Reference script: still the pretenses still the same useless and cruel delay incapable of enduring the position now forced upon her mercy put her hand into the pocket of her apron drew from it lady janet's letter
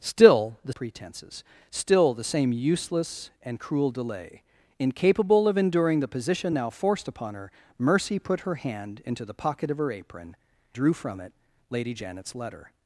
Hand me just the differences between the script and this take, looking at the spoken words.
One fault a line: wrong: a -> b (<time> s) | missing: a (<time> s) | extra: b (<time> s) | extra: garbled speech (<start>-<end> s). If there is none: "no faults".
no faults